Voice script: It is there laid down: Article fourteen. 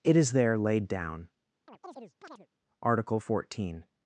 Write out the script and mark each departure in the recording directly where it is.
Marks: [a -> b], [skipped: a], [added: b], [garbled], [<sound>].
It is there laid down: [chirp] Article fourteen.